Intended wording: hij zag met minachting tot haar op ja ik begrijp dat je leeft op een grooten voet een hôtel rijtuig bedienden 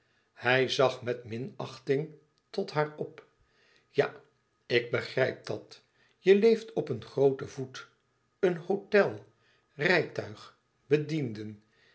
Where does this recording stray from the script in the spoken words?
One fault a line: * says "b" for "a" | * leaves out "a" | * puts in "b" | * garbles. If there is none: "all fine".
all fine